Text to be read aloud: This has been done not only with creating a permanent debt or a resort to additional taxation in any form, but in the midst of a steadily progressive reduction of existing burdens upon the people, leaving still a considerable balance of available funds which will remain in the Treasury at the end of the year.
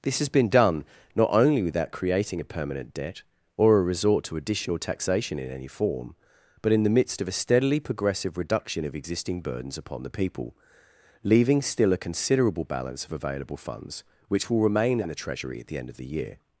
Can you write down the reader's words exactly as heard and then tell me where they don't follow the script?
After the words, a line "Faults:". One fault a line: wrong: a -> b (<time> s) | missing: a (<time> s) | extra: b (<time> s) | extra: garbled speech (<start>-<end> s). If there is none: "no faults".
This has been done not only without creating a permanent debt or a resort to additional taxation in any form, but in the midst of a steadily progressive reduction of existing burdens upon the people, leaving still a considerable balance of available funds which will remain in the Treasury at the end of the year.
Faults:
wrong: with -> without (1.6 s)